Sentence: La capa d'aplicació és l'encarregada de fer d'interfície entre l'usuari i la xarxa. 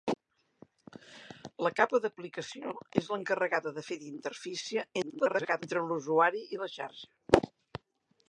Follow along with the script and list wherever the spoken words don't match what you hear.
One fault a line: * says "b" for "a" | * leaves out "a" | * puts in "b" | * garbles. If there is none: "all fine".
* garbles